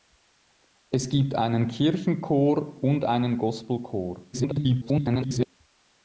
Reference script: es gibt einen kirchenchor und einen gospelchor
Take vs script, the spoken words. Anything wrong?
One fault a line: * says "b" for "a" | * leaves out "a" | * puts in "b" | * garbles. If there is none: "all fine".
* garbles